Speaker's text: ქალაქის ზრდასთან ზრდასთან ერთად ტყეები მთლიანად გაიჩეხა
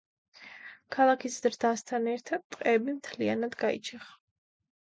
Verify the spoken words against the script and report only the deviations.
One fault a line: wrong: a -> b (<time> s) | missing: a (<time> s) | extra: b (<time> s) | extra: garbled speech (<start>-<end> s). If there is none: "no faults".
missing: ზრდასთან (2.1 s)